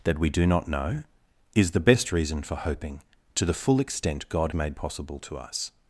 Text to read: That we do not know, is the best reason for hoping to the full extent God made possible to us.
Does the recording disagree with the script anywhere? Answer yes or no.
no